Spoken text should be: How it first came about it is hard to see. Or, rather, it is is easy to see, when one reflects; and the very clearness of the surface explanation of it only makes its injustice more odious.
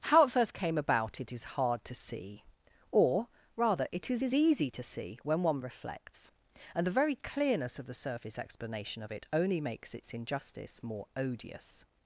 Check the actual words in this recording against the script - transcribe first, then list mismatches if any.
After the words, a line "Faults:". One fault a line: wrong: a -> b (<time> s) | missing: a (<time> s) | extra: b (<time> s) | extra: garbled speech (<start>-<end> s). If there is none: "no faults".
How it first came about it is hard to see. Or, rather, it is is easy to see, when one reflects; and the very clearness of the surface explanation of it only makes its injustice more odious.
Faults:
no faults